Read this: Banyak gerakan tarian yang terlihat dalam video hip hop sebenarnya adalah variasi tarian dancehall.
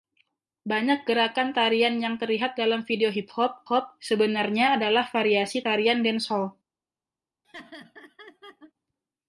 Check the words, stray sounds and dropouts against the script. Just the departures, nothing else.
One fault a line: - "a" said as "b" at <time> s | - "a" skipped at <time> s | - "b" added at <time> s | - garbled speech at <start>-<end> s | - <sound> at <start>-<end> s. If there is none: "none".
- "hop" added at 3.7 s
- laugh at 7.4-8.7 s